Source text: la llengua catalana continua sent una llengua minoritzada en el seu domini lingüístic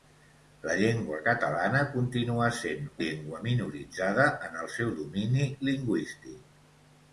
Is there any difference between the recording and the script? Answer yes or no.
yes